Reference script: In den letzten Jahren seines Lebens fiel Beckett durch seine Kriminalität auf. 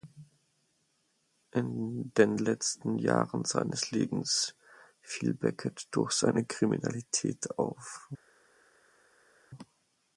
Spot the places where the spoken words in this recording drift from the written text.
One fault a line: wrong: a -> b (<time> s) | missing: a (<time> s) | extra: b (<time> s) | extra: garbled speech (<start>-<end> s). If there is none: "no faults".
no faults